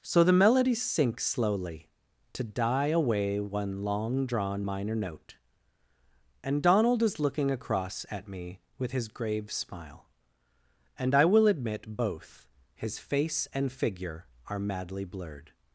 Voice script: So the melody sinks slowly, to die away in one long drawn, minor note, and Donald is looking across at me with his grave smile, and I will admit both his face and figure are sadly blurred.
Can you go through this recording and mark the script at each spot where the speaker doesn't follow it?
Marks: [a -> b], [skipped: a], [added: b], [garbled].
So the melody sinks slowly, to die away [skipped: in] one long drawn, minor note, and Donald is looking across at me with his grave smile, and I will admit both his face and figure are [sadly -> madly] blurred.